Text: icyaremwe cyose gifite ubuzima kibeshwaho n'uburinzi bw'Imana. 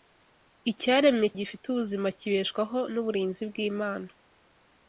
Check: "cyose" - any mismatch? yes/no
yes